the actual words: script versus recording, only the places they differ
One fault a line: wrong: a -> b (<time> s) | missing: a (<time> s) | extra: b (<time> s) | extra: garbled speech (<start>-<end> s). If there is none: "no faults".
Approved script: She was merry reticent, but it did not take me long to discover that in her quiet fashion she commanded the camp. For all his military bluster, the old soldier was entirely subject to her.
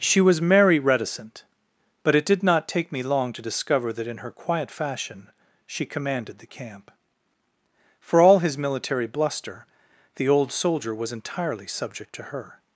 no faults